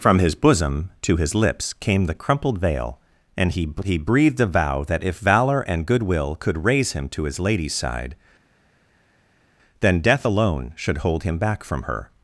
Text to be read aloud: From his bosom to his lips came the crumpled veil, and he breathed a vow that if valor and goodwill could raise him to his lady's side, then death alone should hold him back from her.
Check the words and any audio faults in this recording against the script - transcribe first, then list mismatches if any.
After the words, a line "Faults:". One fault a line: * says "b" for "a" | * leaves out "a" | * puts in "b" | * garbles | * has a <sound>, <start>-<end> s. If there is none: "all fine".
From his bosom to his lips came the crumpled veil, and he he breathed a vow that if valor and goodwill could raise him to his lady's side, then death alone should hold him back from her.
Faults:
* puts in "he"